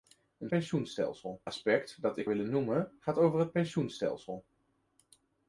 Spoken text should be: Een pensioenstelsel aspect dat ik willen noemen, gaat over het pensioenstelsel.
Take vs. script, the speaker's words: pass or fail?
pass